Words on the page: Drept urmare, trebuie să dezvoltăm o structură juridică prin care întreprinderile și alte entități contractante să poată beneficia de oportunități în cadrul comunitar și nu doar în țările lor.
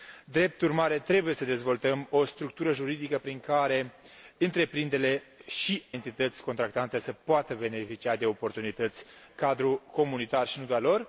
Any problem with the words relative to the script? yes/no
yes